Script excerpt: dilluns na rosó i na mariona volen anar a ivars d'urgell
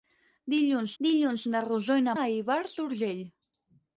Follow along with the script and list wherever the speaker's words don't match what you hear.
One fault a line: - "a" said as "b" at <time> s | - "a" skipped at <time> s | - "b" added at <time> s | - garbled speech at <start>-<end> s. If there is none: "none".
- "dilluns" added at 1.0 s
- "mariona volen anar" skipped at 2.2 s